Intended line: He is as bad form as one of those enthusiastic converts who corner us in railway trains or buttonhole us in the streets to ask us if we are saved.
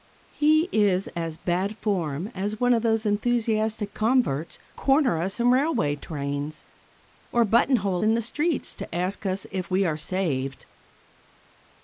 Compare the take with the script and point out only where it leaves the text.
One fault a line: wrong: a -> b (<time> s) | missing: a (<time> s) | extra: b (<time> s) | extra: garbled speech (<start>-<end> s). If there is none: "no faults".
missing: who (4.6 s)
missing: us (8.0 s)